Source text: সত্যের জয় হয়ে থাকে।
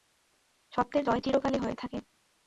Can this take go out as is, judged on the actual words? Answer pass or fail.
fail